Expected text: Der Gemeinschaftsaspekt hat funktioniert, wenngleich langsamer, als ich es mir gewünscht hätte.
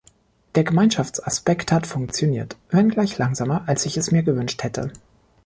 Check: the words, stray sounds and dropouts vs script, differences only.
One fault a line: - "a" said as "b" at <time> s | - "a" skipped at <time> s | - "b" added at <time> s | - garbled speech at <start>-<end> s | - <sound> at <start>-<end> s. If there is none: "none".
none